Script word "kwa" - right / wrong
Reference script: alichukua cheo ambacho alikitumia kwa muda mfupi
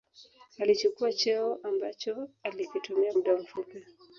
wrong